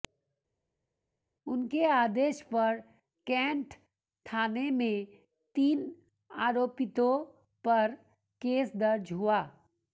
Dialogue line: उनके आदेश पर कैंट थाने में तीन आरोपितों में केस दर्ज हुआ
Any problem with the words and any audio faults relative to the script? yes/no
yes